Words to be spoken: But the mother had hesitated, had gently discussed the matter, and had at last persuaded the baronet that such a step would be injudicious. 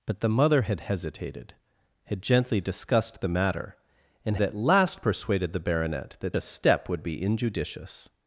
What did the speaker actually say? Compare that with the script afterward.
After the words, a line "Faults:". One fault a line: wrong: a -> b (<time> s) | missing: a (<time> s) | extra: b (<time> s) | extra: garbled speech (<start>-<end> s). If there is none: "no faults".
But the mother had hesitated, had gently discussed the matter, and at last persuaded the baronet that a step would be injudicious.
Faults:
missing: had (4.4 s)
missing: such (6.4 s)